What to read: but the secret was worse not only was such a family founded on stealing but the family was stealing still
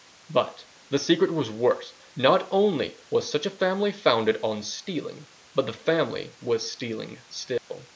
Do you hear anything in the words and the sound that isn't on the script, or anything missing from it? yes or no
yes